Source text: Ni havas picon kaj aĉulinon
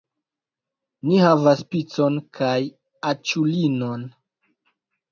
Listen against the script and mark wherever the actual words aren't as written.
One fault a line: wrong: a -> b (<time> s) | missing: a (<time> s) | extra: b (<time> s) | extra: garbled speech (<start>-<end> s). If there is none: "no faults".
no faults